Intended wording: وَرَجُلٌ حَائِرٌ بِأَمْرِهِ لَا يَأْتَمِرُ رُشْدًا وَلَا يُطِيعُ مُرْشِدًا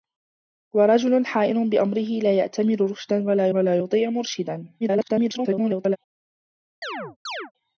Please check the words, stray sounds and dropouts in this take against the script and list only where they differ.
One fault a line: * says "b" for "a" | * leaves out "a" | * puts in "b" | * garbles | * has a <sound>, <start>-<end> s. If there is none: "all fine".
* puts in "وَلَا"
* garbles
* has a chirp, 6.8-7.5 s